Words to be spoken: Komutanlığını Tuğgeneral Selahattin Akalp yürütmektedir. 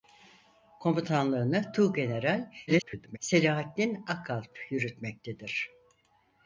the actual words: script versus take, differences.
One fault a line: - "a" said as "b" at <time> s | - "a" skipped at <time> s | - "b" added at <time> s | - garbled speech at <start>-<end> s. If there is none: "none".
- garbled speech at 2.7-3.2 s